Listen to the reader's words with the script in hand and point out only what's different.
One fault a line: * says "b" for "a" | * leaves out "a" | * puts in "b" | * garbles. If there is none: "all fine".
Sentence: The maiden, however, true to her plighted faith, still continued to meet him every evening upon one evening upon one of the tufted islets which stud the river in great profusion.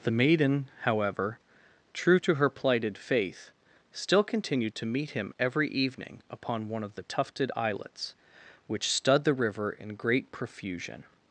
* leaves out "evening upon one"